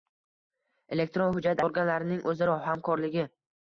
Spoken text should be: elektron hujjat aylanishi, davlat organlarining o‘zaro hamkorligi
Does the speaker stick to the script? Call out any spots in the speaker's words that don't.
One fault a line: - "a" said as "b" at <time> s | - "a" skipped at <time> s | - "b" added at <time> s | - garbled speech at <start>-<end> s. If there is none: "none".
- "aylanishi davlat" skipped at 1.6 s